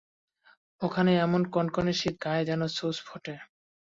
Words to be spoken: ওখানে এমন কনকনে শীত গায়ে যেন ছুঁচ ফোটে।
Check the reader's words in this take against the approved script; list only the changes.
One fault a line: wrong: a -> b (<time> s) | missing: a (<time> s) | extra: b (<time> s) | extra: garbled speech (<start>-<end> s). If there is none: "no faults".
no faults